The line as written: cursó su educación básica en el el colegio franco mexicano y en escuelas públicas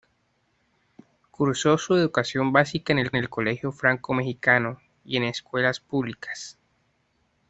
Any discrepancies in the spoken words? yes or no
no